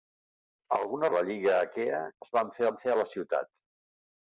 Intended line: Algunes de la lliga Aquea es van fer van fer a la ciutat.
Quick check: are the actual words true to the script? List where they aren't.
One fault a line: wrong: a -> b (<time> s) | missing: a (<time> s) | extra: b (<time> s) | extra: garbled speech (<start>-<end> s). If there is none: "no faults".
no faults